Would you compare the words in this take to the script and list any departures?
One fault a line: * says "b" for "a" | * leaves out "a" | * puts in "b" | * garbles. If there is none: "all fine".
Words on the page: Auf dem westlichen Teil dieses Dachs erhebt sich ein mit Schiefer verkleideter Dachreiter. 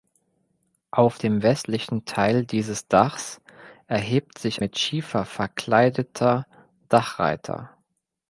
* leaves out "ein"